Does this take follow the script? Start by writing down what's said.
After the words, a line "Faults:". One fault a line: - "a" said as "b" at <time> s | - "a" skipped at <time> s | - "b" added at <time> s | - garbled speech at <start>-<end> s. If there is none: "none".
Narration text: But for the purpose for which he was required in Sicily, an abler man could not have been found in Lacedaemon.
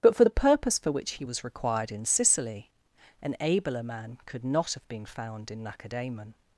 But for the purpose for which he was required in Sicily, an abler man could not have been found in Lacedaemon.
Faults:
none